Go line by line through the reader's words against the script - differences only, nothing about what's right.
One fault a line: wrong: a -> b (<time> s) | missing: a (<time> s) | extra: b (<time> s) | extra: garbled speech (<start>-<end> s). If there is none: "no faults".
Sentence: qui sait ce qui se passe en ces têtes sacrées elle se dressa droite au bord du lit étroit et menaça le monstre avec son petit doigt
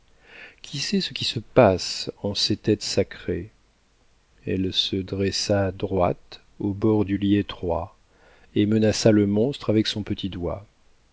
no faults